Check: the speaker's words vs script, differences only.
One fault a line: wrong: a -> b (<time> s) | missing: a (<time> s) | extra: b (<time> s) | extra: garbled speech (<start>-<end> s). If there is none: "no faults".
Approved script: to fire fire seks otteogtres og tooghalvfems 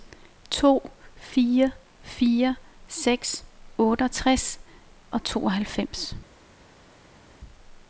no faults